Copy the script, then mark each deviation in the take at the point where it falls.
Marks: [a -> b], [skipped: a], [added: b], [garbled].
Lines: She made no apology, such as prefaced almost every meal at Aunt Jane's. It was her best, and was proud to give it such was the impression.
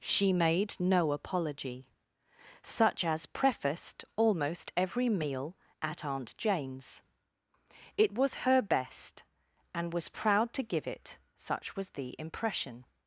She made no apology, such as prefaced almost every meal at Aunt Jane's. It was her best, and was proud to give it such was the impression.